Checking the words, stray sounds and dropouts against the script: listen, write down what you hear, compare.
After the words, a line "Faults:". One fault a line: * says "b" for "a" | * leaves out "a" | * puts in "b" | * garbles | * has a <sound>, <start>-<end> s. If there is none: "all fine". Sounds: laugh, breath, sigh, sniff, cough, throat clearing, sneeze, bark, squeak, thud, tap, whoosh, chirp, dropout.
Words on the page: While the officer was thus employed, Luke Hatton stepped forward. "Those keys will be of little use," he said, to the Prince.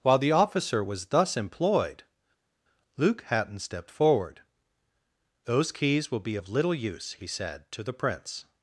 While the officer was thus employed, Luke Hatton stepped forward. "Those keys will be of little use," he said, to the Prince.
Faults:
all fine